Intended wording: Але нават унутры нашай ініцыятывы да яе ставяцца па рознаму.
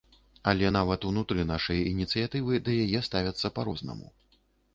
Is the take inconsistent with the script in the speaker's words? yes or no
no